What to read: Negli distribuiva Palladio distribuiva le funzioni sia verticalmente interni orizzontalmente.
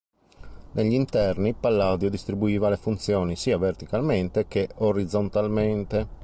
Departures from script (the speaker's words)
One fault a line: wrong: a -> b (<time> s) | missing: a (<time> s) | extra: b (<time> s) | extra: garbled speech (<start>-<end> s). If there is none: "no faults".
wrong: distribuiva -> interni (0.9 s)
wrong: interni -> che (4.5 s)